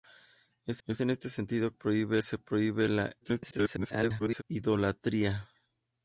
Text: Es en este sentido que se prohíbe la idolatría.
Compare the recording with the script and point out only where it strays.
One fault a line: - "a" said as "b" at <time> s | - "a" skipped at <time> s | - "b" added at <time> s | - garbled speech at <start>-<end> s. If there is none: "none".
- "es" added at 0.9 s
- "que" said as "prohíbe" at 1.7 s
- garbled speech at 3.2-4.4 s